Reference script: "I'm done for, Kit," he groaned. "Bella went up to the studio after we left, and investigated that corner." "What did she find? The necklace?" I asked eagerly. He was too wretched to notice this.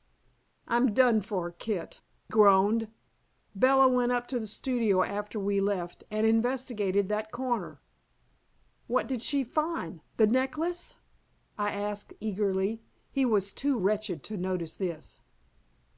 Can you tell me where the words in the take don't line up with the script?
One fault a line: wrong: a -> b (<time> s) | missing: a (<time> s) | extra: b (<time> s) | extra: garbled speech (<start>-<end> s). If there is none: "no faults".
missing: he (2.0 s)